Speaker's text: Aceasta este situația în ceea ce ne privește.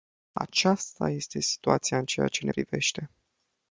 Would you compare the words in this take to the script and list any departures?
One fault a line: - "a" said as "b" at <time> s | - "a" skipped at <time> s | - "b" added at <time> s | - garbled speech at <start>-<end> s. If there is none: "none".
none